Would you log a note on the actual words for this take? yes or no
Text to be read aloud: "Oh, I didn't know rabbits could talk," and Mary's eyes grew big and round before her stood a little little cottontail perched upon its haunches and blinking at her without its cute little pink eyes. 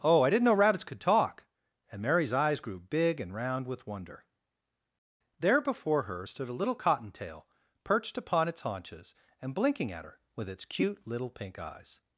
yes